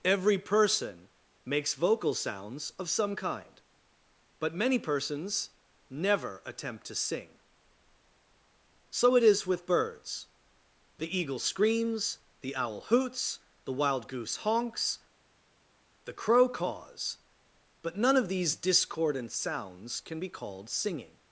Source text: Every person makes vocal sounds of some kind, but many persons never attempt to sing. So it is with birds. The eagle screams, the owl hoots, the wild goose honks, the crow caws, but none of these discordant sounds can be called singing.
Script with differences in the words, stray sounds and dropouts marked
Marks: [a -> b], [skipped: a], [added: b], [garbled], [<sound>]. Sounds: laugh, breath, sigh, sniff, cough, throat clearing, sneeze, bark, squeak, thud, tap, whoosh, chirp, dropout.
Every person makes vocal sounds of some kind, but many persons never attempt to sing. So it is with birds. The eagle screams, the owl hoots, the wild goose honks, the crow caws, but none of these discordant sounds can be called singing.